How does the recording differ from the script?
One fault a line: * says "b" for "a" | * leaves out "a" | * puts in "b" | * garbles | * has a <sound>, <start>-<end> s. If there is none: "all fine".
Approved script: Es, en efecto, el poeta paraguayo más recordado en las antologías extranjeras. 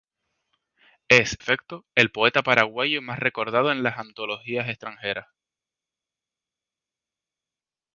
* leaves out "en"